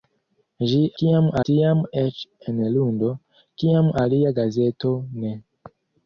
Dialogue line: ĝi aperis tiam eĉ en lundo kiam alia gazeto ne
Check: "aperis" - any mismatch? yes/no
yes